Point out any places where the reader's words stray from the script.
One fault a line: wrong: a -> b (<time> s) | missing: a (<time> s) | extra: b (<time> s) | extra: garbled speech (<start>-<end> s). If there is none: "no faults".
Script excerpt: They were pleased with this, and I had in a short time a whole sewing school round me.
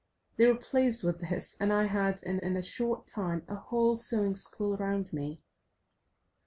extra: in (2.4 s)